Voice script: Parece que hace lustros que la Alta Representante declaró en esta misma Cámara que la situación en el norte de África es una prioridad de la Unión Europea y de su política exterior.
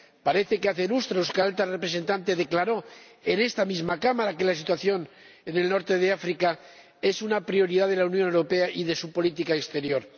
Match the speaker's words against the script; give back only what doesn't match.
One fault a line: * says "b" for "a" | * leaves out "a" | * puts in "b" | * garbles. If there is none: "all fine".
all fine